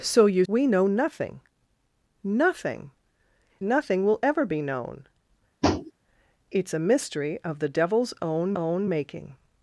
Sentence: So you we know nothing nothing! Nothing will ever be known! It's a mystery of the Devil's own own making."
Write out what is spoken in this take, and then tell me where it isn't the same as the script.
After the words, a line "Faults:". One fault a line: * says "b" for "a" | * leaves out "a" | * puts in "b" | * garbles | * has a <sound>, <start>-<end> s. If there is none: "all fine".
So you we know nothing nothing! Nothing will ever be known! It's a mystery of the Devil's own own making."
Faults:
* has a tap, 5.6-5.9 s